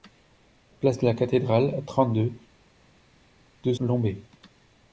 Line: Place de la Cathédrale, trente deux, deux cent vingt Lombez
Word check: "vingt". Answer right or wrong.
wrong